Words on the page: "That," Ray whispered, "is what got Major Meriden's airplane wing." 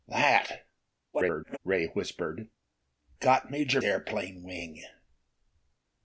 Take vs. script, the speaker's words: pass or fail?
fail